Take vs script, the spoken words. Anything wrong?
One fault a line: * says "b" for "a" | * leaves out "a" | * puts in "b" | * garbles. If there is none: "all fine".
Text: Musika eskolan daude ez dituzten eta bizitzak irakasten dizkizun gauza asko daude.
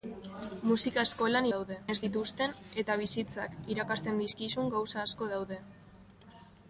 all fine